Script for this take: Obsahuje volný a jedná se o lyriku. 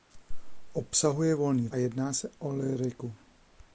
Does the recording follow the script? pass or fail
pass